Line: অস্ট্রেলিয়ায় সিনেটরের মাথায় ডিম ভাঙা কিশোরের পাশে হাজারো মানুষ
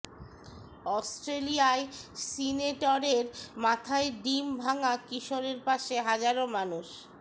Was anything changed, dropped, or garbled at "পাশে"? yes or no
no